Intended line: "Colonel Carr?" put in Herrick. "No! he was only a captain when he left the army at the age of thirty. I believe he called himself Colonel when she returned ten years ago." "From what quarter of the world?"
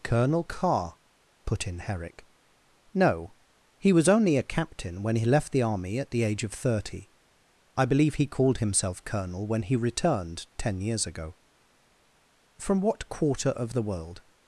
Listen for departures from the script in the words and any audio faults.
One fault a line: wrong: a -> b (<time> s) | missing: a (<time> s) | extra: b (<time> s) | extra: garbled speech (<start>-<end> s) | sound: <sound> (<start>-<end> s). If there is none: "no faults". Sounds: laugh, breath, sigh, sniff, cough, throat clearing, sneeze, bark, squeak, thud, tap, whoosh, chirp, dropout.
wrong: she -> he (9.6 s)